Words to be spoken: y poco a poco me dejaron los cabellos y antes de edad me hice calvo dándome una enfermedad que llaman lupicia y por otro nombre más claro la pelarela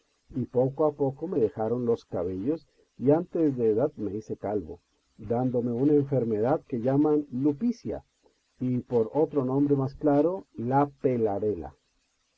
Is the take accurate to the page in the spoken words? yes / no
yes